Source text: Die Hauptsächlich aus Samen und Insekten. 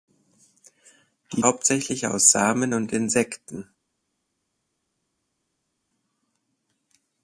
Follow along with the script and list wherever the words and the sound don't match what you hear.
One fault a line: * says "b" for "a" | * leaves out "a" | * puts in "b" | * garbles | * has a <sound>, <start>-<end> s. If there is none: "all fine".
all fine